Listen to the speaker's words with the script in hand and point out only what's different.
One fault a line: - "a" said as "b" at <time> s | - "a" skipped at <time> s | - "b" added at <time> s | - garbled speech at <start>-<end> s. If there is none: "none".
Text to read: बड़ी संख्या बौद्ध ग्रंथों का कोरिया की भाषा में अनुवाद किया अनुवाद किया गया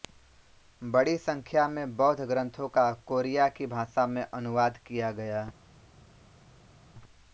- "में" added at 1.7 s
- "अनुवाद किया" skipped at 5.1 s